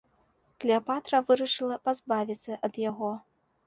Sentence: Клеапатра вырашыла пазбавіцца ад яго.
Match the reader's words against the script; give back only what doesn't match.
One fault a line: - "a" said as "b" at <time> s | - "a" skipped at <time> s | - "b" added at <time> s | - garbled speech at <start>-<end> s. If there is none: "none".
none